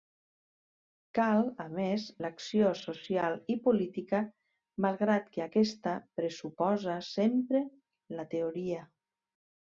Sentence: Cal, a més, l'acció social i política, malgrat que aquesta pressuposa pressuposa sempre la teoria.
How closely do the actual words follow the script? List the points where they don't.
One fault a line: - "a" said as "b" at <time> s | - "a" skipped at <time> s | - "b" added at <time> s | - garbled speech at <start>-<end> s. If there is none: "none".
- "pressuposa" skipped at 7.0 s